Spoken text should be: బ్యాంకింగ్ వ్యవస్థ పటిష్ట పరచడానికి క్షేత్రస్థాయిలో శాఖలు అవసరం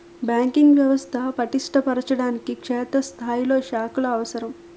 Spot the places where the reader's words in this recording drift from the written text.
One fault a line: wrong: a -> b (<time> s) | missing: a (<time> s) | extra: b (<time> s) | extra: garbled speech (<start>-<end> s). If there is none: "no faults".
no faults